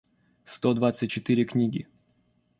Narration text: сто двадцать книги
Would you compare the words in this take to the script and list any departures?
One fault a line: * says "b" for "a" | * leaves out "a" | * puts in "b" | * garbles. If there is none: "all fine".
* puts in "четыре"